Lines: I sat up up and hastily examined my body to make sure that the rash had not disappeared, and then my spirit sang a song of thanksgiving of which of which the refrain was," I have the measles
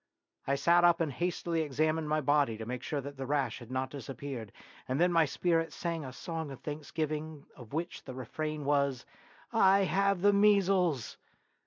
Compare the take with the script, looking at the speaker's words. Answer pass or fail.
fail